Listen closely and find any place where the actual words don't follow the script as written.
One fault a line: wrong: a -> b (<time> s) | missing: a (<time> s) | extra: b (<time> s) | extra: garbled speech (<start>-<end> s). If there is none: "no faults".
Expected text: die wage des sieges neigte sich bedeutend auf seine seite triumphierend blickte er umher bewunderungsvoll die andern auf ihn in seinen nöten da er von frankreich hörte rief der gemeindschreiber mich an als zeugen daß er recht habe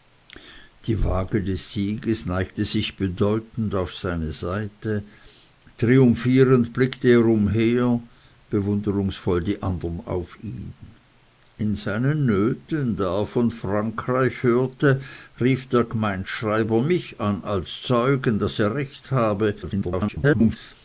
extra: garbled speech (19.6-20.6 s)